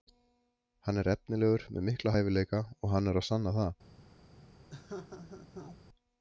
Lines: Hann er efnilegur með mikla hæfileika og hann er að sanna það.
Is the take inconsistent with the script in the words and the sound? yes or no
yes